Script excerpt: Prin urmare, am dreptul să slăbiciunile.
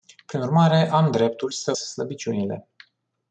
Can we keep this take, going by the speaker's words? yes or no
yes